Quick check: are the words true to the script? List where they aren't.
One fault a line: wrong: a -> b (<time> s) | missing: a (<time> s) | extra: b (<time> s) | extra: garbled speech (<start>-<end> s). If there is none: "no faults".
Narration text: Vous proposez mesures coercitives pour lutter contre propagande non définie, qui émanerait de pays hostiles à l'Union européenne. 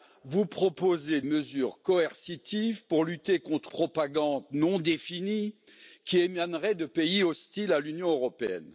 no faults